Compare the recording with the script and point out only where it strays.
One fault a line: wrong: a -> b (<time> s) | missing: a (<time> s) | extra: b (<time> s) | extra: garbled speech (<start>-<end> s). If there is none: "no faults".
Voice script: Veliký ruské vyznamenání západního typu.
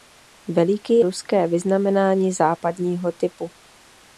no faults